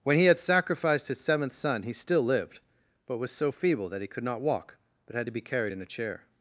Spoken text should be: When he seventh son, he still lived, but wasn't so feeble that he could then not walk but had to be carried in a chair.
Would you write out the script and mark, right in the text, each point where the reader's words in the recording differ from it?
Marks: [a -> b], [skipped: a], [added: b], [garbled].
When he [added: had sacrificed his] seventh son, he still lived, but [wasn't -> was] so feeble that he could [skipped: then] not walk but had to be carried in a chair.